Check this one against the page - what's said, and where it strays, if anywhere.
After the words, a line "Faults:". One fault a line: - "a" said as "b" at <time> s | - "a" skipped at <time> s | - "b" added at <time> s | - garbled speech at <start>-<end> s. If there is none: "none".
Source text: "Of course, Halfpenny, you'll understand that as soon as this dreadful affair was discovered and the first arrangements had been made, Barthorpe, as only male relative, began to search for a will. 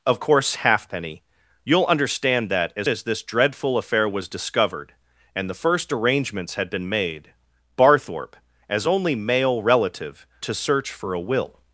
"Of course, Halfpenny, you'll understand that as as this dreadful affair was discovered and the first arrangements had been made, Barthorpe, as only male relative, to search for a will.
Faults:
- "soon" skipped at 2.9 s
- "began" skipped at 10.3 s